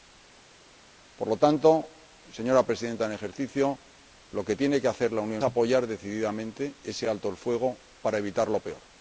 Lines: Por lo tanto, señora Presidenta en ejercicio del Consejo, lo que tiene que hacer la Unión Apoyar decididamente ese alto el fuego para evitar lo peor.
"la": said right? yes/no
yes